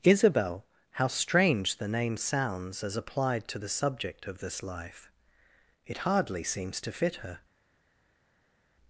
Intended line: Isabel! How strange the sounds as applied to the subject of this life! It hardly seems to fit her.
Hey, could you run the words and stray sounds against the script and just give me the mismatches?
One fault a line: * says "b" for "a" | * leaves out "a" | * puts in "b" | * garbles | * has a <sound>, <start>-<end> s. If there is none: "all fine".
* puts in "name"